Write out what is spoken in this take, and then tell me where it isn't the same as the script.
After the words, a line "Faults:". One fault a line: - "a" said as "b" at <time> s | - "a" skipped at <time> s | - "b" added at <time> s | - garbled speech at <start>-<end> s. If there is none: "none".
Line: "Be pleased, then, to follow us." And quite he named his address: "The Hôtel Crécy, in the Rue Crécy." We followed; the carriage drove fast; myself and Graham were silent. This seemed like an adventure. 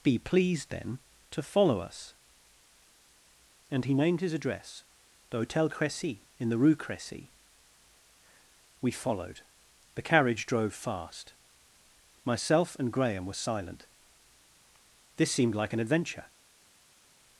"Be pleased, then, to follow us." And he named his address: "The Hôtel Crécy, in the Rue Crécy." We followed; the carriage drove fast; myself and Graham were silent. This seemed like an adventure.
Faults:
- "quite" skipped at 3.9 s